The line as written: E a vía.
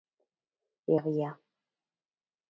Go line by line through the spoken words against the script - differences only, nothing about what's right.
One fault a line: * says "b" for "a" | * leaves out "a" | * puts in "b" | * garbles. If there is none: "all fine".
all fine